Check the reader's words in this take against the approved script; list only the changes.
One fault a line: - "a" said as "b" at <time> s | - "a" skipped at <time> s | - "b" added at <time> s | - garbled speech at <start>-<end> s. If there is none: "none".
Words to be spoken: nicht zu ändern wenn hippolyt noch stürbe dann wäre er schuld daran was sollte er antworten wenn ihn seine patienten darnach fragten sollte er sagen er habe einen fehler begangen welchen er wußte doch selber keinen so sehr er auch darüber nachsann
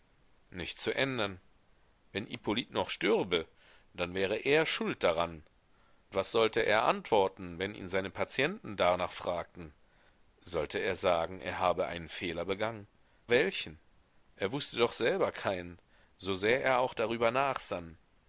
none